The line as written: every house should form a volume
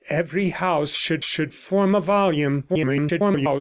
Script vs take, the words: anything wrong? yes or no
yes